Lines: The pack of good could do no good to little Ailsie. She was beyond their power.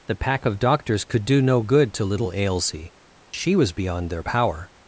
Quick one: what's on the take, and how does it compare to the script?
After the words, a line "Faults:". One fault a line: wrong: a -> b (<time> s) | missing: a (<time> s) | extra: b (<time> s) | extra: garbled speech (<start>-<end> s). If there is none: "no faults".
The pack of doctors could do no good to little Ailsie. She was beyond their power.
Faults:
wrong: good -> doctors (0.6 s)